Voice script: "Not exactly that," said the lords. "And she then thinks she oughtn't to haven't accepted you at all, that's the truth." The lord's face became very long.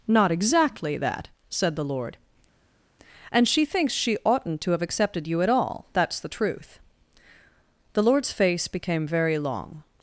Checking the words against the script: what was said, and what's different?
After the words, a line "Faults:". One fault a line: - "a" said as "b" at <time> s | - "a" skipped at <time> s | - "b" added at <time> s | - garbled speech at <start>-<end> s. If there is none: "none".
"Not exactly that," said the lord. "And she thinks she oughtn't to have accepted you at all, that's the truth." The lord's face became very long.
Faults:
- "lords" said as "lord" at 1.9 s
- "then" skipped at 3.6 s
- "haven't" said as "have" at 4.7 s